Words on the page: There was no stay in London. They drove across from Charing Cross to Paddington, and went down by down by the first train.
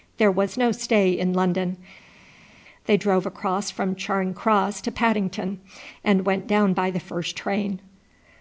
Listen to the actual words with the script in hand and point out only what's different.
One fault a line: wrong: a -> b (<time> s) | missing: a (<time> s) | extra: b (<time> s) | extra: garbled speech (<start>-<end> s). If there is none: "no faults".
missing: down by (6.9 s)